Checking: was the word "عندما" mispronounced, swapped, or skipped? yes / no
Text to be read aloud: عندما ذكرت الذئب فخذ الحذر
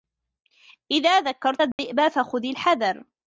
yes